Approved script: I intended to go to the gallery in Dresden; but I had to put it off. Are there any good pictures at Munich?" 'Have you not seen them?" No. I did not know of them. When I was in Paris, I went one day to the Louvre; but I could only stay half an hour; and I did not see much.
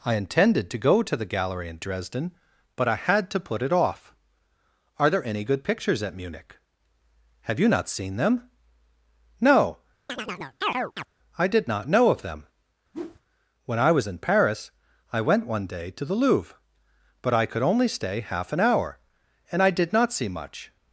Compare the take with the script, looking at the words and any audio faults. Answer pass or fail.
fail